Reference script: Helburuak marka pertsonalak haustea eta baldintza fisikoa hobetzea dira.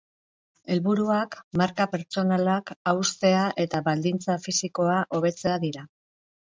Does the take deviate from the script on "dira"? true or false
false